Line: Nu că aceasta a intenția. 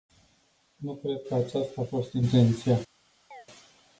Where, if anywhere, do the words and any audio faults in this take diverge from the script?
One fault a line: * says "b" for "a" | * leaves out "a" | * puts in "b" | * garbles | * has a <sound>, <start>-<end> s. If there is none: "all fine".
* puts in "cred"
* puts in "fost"
* has a chirp, 3.3-3.5 s